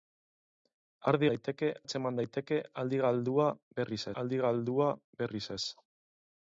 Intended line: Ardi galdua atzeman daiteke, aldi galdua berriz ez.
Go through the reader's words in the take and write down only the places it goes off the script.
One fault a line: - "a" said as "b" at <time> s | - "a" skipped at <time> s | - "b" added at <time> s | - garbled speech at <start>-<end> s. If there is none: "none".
- "galdua" said as "daiteke" at 1.3 s
- "aldi galdua berriz" added at 4.2 s